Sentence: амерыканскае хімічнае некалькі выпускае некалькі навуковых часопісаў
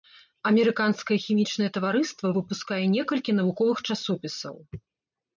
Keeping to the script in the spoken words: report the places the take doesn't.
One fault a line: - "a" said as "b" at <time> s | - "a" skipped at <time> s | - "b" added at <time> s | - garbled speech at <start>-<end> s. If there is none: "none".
- "некалькі" said as "таварыства" at 1.8 s